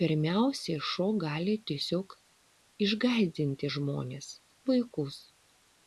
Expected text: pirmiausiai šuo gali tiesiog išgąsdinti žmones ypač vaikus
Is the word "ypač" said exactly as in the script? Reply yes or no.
no